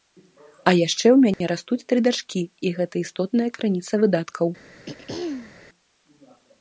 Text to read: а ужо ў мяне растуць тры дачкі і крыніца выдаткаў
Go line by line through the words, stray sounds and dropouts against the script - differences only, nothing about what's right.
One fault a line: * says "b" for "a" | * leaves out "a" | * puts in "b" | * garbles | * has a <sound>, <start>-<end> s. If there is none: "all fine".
* says "яшчэ" for "ужо"
* has a dropout, 1.3-1.4 s
* puts in "гэта істотная"
* has a throat clearing, 4.9-5.5 s